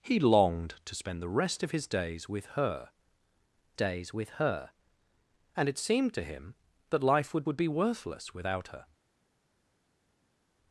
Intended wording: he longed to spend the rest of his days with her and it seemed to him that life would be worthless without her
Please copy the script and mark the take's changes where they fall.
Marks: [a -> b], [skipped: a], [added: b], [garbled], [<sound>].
he longed to spend the rest of his days with her [added: days with her] and it seemed to him that life would [added: would] be worthless without her